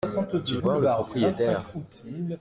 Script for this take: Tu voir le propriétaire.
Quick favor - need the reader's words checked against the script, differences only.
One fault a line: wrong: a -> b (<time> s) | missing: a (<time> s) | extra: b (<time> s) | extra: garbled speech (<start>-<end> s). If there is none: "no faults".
no faults